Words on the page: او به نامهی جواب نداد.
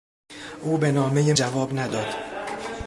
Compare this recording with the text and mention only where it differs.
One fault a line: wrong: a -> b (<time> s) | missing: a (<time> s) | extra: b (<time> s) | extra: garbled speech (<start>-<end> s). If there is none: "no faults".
no faults